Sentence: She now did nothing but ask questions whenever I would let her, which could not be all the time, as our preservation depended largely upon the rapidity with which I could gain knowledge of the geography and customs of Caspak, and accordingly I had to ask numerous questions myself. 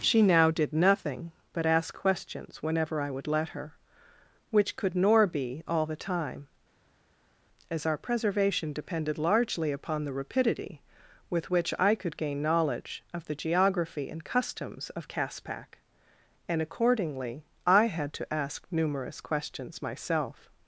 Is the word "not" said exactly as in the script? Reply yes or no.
no